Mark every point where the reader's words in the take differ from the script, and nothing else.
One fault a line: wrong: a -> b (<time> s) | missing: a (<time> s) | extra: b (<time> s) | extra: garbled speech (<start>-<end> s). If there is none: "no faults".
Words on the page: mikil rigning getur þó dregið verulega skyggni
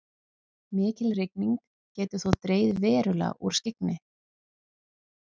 extra: úr (3.5 s)